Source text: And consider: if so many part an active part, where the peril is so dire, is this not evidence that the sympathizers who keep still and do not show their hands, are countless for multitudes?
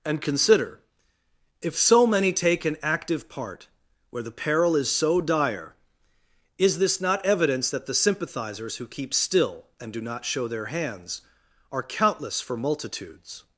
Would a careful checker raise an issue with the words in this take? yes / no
yes